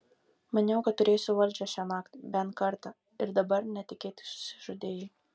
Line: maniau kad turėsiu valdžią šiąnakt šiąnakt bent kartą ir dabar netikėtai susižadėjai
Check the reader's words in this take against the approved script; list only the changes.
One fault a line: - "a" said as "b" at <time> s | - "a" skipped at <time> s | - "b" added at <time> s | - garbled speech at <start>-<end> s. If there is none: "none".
- "šiąnakt" skipped at 2.1 s